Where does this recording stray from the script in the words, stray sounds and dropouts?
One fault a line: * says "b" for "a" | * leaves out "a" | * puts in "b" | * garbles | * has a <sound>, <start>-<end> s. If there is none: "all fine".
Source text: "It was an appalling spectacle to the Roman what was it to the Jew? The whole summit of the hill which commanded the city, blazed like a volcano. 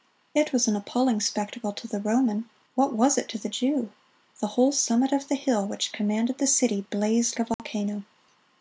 * leaves out "like"
* has a dropout, 7.5-7.6 s